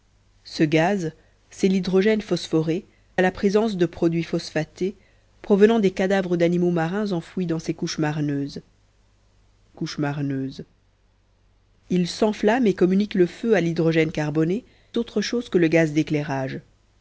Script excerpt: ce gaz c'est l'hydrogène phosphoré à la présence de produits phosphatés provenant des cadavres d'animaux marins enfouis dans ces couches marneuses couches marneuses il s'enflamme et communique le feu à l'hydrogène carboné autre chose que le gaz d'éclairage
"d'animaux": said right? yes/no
yes